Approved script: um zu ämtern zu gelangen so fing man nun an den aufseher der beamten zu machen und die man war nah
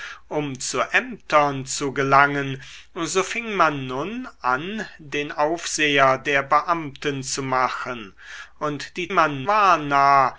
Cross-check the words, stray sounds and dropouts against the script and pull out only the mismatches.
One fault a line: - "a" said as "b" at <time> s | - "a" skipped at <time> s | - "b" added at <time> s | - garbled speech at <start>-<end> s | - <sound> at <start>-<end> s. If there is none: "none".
none